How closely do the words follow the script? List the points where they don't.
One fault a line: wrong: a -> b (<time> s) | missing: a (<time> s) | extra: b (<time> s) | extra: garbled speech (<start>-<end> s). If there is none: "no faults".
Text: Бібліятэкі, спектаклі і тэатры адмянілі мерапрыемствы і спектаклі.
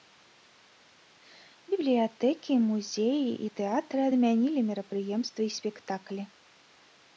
wrong: спектаклі -> музеі (2.7 s)